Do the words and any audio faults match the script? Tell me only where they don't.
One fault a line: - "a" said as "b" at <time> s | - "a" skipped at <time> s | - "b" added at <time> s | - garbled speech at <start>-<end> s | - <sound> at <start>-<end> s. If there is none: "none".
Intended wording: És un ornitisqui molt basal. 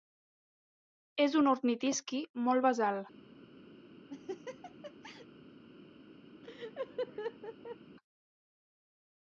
- laugh at 4.1-5.3 s
- laugh at 6.4-7.8 s